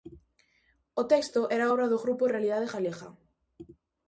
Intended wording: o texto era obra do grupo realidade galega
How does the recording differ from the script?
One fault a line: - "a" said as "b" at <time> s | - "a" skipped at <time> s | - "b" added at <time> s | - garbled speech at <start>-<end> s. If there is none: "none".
none